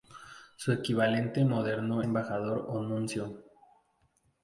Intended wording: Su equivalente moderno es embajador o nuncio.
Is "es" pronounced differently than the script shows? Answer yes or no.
yes